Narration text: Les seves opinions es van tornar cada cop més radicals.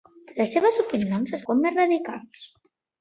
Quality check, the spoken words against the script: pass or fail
fail